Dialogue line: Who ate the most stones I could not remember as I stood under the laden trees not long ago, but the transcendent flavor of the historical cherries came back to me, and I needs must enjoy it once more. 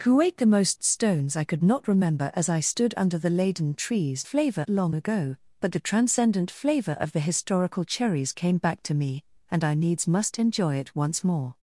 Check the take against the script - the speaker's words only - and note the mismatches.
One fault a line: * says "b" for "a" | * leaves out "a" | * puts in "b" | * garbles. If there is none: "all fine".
* says "flavor" for "not"